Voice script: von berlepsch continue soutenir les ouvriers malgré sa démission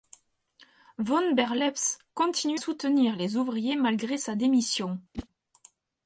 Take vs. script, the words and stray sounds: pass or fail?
fail